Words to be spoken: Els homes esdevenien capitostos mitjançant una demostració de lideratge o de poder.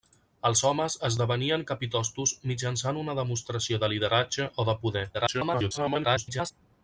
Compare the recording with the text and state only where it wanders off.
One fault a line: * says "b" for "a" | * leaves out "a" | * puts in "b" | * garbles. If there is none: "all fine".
* garbles